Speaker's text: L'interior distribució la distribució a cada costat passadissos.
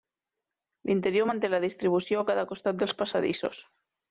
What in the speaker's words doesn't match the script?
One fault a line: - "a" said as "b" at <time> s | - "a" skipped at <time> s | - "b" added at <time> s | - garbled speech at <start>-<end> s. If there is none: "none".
- "distribució" said as "manté" at 1.3 s
- "dels" added at 2.8 s